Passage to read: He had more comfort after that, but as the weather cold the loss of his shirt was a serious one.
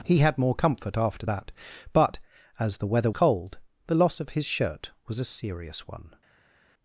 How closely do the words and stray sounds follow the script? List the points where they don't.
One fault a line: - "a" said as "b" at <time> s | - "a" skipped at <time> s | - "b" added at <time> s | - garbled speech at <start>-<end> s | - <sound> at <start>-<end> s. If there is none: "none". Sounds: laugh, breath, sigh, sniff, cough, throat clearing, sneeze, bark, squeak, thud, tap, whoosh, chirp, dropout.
none